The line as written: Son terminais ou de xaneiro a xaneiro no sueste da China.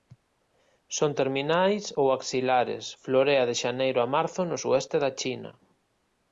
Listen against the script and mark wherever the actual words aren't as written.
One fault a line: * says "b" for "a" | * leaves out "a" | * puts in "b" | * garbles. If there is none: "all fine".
* puts in "axilares florea"
* says "marzo" for "xaneiro"